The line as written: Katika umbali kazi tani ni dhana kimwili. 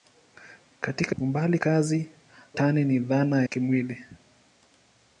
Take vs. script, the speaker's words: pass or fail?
pass